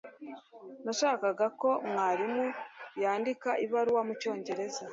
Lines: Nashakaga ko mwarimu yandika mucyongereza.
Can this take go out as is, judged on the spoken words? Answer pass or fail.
fail